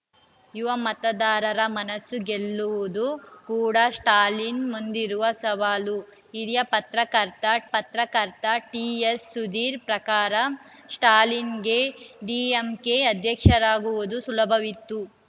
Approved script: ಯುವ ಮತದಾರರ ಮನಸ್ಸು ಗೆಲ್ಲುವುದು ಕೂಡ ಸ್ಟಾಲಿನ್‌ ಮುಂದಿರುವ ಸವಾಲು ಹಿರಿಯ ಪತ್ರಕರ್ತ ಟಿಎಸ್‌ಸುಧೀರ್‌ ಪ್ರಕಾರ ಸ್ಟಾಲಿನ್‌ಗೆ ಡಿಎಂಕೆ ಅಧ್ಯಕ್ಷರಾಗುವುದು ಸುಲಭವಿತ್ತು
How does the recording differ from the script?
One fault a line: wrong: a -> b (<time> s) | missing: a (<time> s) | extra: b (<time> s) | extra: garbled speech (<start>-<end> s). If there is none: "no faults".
extra: ಪತ್ರಕರ್ತ (7.7 s)